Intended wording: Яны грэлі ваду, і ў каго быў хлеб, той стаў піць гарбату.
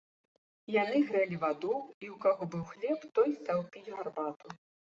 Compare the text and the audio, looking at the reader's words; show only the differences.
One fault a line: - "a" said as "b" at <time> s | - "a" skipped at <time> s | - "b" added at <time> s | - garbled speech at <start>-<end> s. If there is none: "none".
none